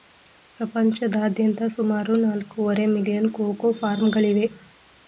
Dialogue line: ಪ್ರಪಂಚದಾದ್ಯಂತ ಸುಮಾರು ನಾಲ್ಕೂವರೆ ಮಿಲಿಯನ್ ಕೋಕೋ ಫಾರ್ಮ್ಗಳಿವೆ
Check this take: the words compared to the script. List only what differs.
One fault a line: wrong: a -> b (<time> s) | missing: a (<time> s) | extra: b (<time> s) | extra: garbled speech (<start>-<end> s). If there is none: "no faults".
no faults